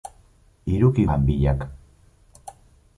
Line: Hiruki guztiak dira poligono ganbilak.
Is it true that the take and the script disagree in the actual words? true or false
true